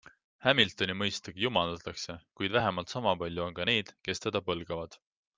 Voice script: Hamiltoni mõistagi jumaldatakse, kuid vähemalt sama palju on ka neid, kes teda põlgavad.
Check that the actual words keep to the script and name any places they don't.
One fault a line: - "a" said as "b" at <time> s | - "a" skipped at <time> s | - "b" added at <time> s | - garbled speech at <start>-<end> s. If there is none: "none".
none